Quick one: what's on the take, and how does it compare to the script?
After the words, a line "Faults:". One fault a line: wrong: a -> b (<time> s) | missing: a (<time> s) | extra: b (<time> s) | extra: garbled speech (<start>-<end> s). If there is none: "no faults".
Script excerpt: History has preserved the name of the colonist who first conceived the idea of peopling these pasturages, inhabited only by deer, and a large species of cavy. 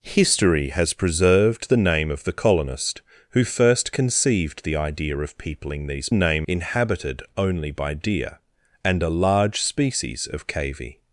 History has preserved the name of the colonist who first conceived the idea of peopling these name, inhabited only by deer, and a large species of cavy.
Faults:
wrong: pasturages -> name (6.1 s)